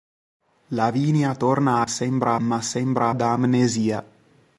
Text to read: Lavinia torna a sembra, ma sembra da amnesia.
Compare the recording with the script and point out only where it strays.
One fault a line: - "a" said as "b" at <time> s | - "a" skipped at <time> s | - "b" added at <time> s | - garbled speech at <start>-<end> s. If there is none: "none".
none